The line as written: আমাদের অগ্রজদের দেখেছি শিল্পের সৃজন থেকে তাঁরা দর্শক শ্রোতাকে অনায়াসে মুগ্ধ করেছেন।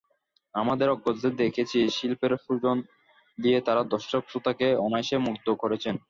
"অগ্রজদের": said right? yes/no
yes